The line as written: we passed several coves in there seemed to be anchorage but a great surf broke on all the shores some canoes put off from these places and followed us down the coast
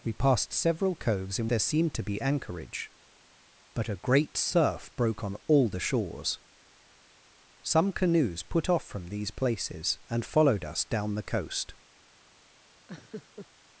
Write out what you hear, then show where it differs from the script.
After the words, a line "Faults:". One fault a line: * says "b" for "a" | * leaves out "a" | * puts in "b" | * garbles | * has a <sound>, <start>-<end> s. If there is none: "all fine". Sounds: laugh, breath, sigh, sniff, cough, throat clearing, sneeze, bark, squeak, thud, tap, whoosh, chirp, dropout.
we passed several coves in there seemed to be anchorage but a great surf broke on all the shores some canoes put off from these places and followed us down the coast
Faults:
* has a laugh, 12.9-13.5 s